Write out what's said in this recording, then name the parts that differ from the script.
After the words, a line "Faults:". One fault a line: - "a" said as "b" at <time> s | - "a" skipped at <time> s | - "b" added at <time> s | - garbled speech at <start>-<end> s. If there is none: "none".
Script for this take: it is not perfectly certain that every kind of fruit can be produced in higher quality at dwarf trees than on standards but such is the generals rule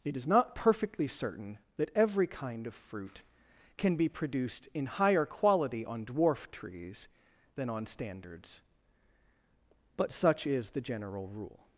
it is not perfectly certain that every kind of fruit can be produced in higher quality on dwarf trees than on standards but such is the general rule
Faults:
- "at" said as "on" at 5.8 s
- "generals" said as "general" at 10.8 s